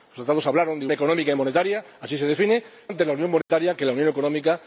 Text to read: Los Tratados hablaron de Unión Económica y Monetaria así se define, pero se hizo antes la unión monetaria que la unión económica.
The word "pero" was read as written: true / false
false